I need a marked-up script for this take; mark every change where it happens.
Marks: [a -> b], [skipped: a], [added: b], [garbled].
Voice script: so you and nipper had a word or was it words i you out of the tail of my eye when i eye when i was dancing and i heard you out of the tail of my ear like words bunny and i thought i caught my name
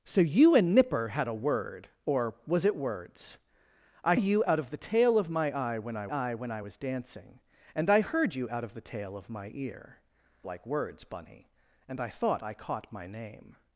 so you and nipper had a word or was it words i you out of the tail of my eye when i eye when i was dancing and i heard you out of the tail of my ear like words bunny and i thought i caught my name